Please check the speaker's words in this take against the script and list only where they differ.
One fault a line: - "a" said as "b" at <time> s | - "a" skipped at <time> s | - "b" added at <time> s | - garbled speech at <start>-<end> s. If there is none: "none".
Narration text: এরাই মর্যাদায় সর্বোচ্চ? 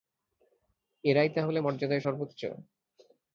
- "তাহলে" added at 1.3 s